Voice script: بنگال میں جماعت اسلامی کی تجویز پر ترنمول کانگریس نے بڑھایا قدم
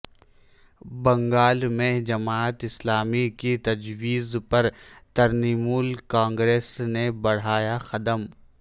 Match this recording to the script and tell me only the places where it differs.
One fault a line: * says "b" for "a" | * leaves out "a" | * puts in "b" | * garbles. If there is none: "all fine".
all fine